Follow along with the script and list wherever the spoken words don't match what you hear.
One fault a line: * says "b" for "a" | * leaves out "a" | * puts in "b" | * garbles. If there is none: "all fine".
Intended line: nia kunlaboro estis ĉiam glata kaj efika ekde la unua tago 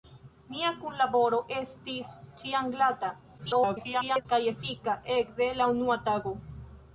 * garbles